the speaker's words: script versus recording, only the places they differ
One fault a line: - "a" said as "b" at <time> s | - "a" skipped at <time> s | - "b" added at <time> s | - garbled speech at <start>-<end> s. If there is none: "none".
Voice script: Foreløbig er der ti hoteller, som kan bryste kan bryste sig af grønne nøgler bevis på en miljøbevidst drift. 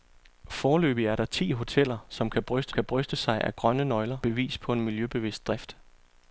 none